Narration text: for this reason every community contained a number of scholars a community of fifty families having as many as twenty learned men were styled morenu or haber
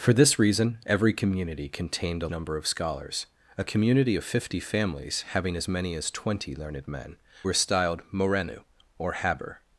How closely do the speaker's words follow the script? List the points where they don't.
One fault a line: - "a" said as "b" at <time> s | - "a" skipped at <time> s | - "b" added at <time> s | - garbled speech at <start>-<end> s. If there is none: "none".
none